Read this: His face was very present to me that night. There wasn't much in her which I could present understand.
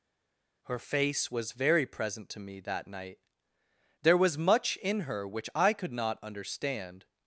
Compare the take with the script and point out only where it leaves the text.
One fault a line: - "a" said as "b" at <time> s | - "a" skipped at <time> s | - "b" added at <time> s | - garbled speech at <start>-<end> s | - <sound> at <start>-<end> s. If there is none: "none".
- "His" said as "Her" at 0.7 s
- "wasn't" said as "was" at 4.2 s
- "present" said as "not" at 5.9 s